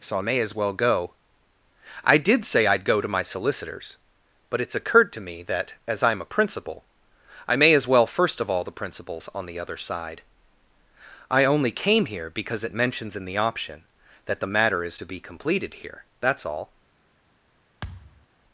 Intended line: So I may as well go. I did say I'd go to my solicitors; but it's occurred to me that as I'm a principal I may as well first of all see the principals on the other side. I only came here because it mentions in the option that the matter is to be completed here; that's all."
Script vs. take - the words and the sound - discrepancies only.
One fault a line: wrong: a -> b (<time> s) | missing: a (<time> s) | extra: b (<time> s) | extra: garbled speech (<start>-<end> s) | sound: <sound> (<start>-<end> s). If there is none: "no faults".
missing: see (8.6 s)
sound: thud (17.8-18.3 s)